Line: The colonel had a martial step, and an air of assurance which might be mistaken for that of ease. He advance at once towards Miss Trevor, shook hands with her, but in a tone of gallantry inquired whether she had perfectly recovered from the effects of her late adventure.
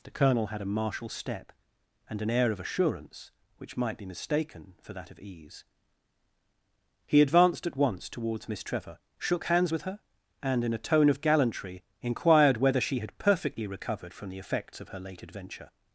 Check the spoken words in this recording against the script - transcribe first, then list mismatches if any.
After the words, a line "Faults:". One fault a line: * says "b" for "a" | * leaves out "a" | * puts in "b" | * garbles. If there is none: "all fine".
The colonel had a martial step, and an air of assurance which might be mistaken for that of ease. He advanced at once towards Miss Trevor, shook hands with her, and in a tone of gallantry inquired whether she had perfectly recovered from the effects of her late adventure.
Faults:
* says "advanced" for "advance"
* says "and" for "but"